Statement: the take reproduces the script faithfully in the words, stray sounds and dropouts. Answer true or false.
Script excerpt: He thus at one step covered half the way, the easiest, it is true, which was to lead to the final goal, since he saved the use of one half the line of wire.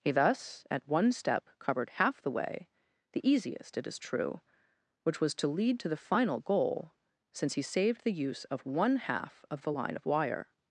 false